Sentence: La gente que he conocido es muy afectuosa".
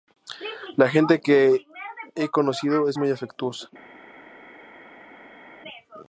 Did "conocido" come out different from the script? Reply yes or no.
no